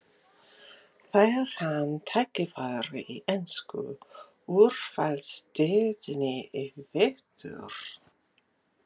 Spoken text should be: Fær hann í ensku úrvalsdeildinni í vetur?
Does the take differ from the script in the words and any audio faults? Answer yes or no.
yes